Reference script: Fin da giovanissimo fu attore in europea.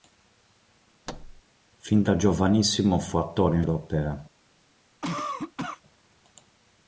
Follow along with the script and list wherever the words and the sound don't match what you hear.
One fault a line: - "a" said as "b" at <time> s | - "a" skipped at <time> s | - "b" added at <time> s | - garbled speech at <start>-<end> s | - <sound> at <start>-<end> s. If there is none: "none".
- thud at 1.1-1.4 s
- cough at 5.0-5.8 s